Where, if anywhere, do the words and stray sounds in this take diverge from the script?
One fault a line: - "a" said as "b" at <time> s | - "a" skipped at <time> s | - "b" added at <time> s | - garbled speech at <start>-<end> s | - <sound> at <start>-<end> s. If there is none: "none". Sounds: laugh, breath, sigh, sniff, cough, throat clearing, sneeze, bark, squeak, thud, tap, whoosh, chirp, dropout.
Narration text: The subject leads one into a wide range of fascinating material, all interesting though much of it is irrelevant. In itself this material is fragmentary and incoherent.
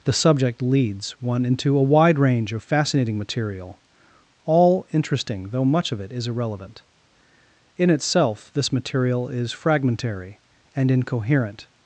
none